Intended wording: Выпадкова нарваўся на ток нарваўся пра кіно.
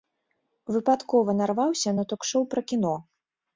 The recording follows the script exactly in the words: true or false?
false